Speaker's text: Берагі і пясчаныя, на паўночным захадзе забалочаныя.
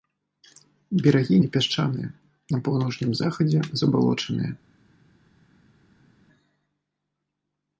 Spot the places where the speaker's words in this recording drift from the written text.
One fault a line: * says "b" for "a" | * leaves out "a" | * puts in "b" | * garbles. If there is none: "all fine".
all fine